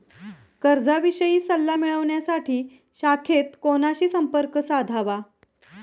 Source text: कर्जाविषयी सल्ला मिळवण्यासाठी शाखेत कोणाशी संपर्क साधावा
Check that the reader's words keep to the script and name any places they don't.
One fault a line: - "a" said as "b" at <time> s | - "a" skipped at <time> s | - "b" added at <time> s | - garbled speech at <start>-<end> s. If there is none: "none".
none